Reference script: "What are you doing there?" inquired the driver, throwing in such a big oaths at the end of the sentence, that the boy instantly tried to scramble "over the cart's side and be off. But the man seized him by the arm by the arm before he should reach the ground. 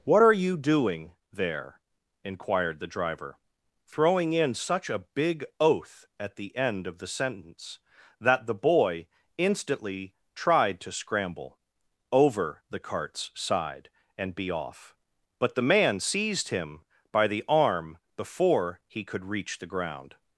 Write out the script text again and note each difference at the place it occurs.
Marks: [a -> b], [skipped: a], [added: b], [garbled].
"What are you doing there?" inquired the driver, throwing in such a big [oaths -> oath] at the end of the sentence, that the boy instantly tried to scramble "over the cart's side and be off. But the man seized him by the arm [skipped: by the arm] before he [should -> could] reach the ground.